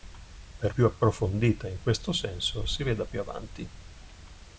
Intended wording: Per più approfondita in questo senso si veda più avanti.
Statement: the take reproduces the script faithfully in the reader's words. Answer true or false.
true